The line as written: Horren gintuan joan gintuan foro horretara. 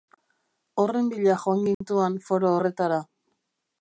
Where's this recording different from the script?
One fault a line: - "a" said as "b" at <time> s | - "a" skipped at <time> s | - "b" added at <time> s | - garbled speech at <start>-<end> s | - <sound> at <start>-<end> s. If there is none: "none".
- "gintuan" said as "bila" at 1.1 s
- dropout at 1.7-1.8 s